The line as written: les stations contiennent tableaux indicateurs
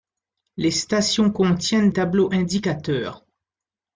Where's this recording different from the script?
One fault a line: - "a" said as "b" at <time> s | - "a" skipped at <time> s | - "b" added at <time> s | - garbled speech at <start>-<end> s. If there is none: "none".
none